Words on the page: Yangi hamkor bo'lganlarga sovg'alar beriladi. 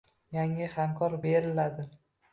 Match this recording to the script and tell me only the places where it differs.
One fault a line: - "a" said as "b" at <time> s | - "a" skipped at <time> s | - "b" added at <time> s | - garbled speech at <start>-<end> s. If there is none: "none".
- "bo'lganlarga sovg'alar" skipped at 1.1 s